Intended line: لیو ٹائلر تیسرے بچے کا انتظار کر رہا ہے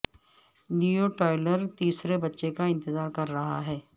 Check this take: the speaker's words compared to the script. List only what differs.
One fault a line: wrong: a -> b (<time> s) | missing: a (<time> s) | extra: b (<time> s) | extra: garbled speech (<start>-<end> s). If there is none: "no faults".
no faults